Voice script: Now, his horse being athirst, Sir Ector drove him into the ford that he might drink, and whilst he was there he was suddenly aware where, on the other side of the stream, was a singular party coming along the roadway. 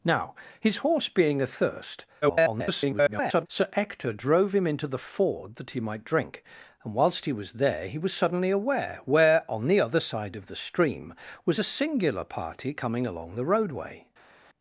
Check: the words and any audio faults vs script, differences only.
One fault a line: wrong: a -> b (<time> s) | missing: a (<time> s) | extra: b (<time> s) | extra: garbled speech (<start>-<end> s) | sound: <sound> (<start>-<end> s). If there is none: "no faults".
extra: garbled speech (2.2-3.5 s)